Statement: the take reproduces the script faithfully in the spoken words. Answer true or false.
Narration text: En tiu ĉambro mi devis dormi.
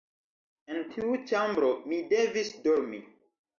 true